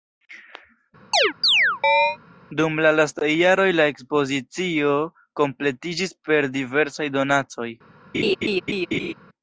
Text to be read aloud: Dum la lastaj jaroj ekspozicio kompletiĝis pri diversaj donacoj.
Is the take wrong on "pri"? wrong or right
wrong